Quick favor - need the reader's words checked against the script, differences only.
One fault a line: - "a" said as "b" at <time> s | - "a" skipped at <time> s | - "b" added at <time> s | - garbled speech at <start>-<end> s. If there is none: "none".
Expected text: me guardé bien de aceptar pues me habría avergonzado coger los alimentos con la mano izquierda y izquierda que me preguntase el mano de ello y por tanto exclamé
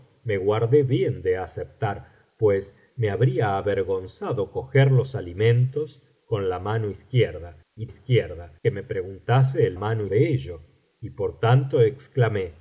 none